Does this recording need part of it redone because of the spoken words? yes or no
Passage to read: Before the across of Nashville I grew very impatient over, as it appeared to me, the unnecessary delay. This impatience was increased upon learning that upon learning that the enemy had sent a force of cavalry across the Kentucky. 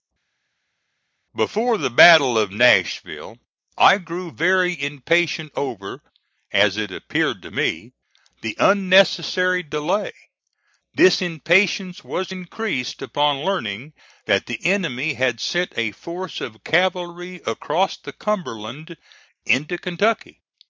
yes